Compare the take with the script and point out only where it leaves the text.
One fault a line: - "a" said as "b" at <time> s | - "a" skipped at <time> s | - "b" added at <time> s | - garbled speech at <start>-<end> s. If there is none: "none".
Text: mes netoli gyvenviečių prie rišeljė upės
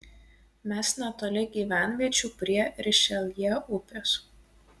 none